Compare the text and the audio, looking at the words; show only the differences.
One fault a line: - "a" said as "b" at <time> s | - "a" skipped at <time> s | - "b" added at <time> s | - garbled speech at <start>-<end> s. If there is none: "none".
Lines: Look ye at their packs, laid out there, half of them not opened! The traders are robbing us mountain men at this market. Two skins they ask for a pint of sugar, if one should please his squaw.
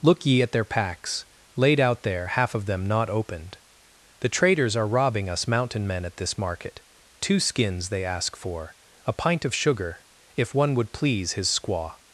- "should" said as "would" at 10.7 s